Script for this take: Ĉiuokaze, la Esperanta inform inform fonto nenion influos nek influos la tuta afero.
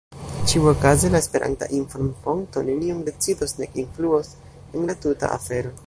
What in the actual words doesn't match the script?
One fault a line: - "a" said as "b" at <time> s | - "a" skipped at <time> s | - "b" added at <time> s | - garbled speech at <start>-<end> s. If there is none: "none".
- "inform" skipped at 2.1 s
- "influos" said as "decidos" at 3.1 s
- "en" added at 4.5 s